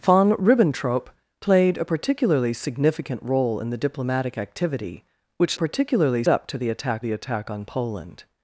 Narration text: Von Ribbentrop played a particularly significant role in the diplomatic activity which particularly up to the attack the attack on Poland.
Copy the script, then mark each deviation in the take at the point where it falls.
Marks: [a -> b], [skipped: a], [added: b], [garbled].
Von Ribbentrop played a particularly significant role in the diplomatic activity which particularly up to the attack the attack on Poland.